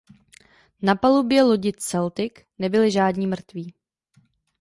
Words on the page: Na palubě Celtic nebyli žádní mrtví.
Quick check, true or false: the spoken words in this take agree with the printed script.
false